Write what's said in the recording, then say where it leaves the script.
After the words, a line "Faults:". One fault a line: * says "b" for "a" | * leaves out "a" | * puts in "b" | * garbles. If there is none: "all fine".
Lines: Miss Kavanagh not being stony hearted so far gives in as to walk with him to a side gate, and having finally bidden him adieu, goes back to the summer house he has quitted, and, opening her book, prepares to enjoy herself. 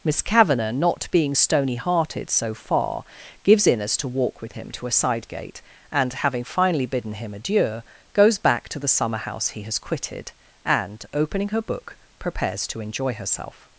Miss Kavanagh not being stony hearted so far gives in as to walk with him to a side gate, and having finally bidden him adieu, goes back to the summer house he has quitted, and, opening her book, prepares to enjoy herself.
Faults:
all fine